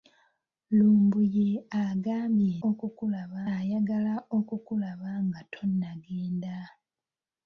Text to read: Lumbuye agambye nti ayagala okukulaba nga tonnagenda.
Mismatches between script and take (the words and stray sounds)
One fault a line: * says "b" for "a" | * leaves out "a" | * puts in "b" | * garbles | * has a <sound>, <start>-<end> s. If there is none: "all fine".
* says "okukulaba" for "nti"